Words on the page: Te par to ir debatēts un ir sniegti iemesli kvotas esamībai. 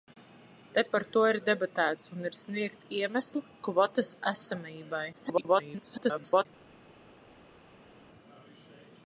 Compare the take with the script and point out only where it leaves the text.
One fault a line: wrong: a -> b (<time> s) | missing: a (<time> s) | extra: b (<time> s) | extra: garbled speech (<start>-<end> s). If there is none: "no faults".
extra: garbled speech (5.1-6.5 s)